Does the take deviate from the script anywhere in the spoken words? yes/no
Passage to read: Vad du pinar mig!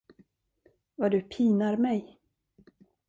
no